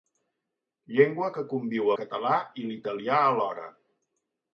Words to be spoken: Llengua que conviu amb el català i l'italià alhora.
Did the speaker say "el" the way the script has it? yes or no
no